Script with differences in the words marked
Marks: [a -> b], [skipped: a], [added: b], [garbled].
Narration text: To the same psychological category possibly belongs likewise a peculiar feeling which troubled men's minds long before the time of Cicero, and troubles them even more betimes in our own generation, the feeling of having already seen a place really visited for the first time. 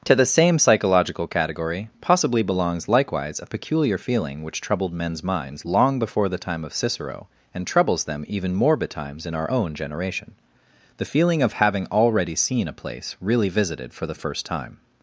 To the same psychological category possibly belongs likewise a peculiar feeling which troubled men's minds long before the time of Cicero, and troubles them even more betimes in our own generation, the feeling of having already seen a place really visited for the first time.